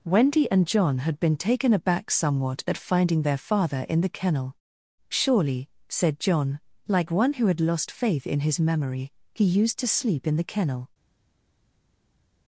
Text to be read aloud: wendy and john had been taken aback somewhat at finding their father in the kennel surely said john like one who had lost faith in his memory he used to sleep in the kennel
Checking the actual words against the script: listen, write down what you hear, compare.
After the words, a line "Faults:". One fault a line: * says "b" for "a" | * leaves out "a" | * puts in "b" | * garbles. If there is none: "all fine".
wendy and john had been taken aback somewhat at finding their father in the kennel surely said john like one who had lost faith in his memory he used to sleep in the kennel
Faults:
all fine